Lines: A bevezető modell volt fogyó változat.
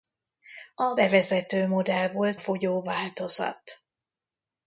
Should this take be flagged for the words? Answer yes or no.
no